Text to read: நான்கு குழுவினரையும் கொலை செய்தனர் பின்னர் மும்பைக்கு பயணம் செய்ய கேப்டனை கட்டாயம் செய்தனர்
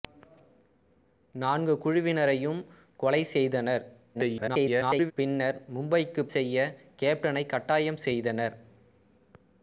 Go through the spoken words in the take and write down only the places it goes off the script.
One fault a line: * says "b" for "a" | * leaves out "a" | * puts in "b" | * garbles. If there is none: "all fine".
* garbles
* leaves out "பயணம்"